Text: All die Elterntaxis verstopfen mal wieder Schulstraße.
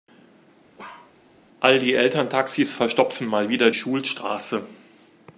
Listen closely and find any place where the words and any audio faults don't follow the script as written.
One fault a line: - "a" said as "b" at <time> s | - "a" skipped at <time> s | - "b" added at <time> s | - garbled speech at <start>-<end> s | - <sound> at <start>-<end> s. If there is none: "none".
- bark at 0.8-1.1 s